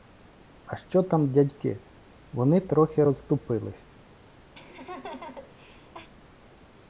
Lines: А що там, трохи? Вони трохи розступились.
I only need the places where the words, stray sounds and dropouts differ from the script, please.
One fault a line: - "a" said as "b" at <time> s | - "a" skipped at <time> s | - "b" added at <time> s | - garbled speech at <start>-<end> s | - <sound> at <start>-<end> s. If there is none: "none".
- "трохи" said as "дядьки" at 1.3 s
- laugh at 4.5-6.1 s